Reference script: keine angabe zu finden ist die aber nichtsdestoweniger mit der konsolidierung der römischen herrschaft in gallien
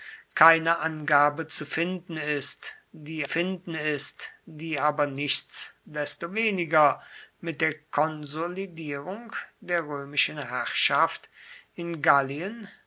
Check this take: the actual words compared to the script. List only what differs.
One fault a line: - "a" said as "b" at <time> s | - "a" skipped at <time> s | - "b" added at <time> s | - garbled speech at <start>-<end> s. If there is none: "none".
- "finden ist die" added at 3.2 s